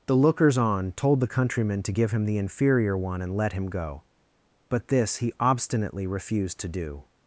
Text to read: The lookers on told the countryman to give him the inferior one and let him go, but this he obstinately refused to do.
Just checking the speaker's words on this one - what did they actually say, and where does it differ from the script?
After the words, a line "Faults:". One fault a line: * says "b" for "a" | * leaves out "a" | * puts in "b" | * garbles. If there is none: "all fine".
The lookers on told the countryman to give him the inferior one and let him go, but this he obstinately refused to do.
Faults:
all fine